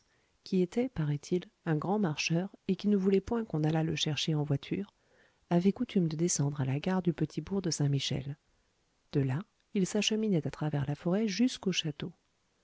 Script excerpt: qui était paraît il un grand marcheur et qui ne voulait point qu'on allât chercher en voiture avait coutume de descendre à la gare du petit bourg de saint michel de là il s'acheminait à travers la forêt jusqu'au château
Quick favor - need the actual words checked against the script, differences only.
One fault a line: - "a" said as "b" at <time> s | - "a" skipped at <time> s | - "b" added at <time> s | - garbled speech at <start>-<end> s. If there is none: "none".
- "le" added at 3.8 s